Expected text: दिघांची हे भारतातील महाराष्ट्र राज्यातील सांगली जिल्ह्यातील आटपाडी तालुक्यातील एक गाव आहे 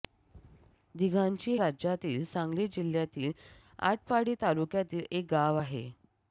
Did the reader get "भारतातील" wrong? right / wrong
wrong